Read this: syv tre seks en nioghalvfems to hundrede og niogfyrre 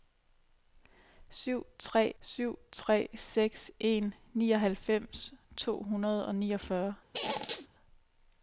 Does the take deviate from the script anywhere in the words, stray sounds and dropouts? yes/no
yes